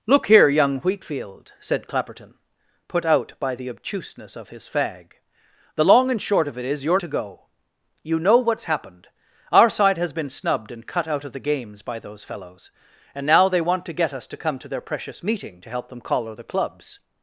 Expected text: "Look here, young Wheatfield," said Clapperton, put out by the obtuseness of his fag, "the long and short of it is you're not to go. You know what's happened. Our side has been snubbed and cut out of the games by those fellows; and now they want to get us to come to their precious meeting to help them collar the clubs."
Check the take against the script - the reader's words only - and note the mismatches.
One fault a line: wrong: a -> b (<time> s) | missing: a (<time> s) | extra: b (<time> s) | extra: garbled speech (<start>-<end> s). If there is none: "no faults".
missing: not (7.0 s)